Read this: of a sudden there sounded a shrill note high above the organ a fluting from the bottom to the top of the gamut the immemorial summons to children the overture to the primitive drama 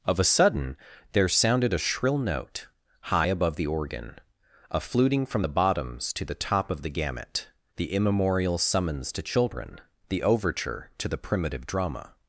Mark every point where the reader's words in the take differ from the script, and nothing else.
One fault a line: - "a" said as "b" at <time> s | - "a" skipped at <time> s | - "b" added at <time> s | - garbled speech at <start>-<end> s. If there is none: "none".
- "bottom" said as "bottoms" at 5.5 s